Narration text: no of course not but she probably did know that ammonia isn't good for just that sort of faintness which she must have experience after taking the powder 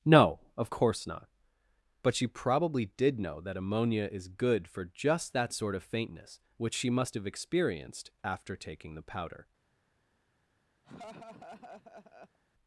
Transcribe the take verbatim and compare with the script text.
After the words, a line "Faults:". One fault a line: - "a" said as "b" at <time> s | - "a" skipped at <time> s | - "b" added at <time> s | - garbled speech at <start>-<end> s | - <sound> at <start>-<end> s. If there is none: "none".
no of course not but she probably did know that ammonia is good for just that sort of faintness which she must have experienced after taking the powder
Faults:
- "isn't" said as "is" at 4.1 s
- "experience" said as "experienced" at 7.2 s
- laugh at 10.8-12.4 s